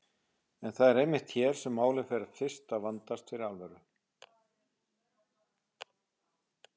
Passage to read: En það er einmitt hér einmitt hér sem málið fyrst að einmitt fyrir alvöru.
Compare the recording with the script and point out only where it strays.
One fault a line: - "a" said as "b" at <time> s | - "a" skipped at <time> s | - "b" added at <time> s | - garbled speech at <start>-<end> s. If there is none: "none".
- "einmitt hér" skipped at 1.6 s
- "fer" added at 2.1 s
- "einmitt" said as "vandast" at 2.9 s